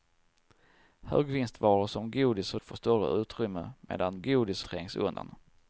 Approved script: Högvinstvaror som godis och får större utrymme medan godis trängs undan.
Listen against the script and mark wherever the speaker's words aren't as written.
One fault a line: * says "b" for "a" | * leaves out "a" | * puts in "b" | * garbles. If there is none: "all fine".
all fine